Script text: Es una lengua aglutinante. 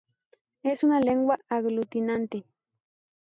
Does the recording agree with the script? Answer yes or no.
yes